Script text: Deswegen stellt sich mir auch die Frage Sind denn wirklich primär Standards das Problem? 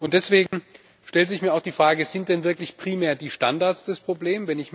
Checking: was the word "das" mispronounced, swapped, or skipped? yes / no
no